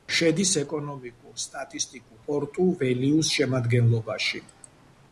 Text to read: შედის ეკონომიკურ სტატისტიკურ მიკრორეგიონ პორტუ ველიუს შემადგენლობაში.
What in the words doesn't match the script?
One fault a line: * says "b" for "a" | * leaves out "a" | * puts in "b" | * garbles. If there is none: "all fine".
* leaves out "მიკრორეგიონ"